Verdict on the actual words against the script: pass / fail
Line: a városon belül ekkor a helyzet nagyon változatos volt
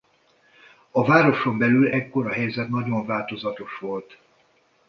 pass